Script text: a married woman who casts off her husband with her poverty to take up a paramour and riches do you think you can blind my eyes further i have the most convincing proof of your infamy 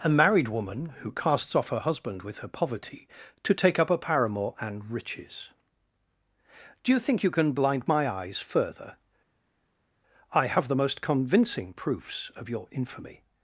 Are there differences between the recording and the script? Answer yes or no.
yes